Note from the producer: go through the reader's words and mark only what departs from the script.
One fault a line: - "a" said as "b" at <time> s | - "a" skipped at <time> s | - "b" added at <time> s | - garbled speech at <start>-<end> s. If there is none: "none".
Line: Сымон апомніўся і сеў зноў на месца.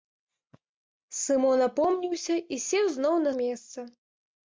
none